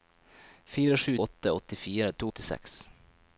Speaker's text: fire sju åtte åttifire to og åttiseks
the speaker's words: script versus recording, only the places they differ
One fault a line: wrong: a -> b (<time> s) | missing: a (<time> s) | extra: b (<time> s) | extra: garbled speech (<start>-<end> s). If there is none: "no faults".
no faults